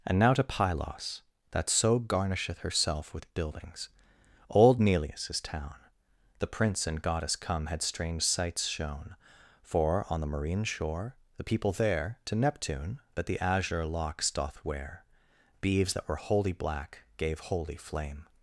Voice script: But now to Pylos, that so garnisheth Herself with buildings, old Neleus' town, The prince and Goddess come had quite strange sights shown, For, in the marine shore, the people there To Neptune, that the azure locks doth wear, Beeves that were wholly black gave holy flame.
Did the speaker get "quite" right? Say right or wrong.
wrong